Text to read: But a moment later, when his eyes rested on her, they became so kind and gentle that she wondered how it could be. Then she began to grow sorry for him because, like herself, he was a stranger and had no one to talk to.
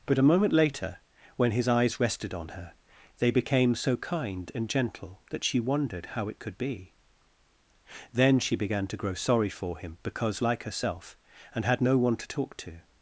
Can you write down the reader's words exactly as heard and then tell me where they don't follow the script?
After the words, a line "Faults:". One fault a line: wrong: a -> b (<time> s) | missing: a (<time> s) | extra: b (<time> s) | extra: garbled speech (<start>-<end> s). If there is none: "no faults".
But a moment later, when his eyes rested on her, they became so kind and gentle that she wondered how it could be. Then she began to grow sorry for him because, like herself, and had no one to talk to.
Faults:
missing: he was a stranger (11.2 s)